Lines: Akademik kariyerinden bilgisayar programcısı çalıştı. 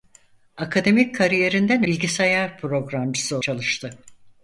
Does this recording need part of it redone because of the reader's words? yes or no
no